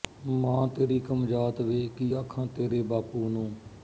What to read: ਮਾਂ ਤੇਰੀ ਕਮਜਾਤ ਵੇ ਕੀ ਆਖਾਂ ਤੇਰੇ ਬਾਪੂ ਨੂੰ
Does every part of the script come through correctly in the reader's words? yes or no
yes